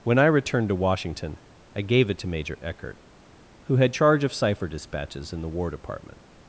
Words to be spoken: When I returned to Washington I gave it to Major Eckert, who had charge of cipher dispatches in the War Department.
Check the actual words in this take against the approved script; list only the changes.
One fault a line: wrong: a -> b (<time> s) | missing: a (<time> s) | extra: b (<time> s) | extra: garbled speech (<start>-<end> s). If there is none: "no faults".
no faults